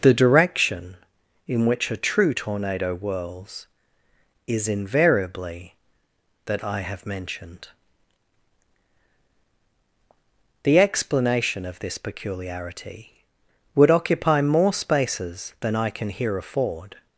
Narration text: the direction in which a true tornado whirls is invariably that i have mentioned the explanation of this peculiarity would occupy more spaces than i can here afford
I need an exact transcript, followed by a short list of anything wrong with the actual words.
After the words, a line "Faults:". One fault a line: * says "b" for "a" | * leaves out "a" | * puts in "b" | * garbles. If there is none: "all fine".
the direction in which a true tornado whirls is invariably that i have mentioned the explanation of this peculiarity would occupy more spaces than i can here afford
Faults:
all fine